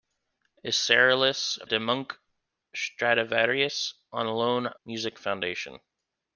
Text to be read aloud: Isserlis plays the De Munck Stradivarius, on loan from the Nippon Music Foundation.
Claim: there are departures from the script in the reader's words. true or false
true